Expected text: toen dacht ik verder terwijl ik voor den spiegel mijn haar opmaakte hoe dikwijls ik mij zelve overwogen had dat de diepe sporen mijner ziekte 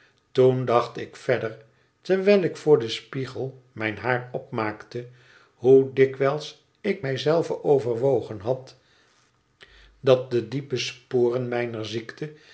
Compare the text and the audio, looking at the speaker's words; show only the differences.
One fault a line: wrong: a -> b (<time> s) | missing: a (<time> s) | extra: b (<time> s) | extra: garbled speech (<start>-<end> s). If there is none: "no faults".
no faults